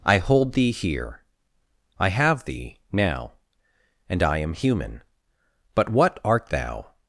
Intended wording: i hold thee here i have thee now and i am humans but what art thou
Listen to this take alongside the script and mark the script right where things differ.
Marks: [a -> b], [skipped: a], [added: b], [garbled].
i hold thee here i have thee now and i am [humans -> human] but what art thou